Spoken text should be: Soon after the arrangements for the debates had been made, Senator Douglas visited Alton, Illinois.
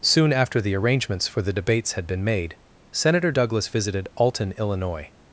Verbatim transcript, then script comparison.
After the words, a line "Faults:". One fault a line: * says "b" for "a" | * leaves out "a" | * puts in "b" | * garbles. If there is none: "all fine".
Soon after the arrangements for the debates had been made, Senator Douglas visited Alton, Illinois.
Faults:
all fine